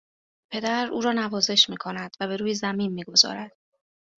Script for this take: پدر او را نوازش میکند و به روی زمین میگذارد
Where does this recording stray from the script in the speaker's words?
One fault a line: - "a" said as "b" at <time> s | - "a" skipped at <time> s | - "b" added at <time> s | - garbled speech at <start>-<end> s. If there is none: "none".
none